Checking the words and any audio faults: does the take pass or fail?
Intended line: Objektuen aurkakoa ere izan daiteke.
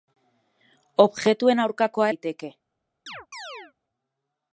fail